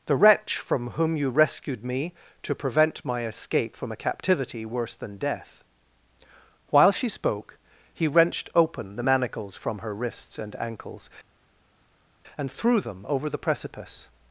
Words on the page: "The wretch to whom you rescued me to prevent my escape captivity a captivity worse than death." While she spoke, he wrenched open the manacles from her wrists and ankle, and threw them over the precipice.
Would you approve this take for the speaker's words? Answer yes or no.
no